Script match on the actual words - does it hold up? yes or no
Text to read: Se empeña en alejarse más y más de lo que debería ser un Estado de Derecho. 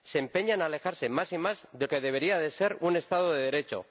no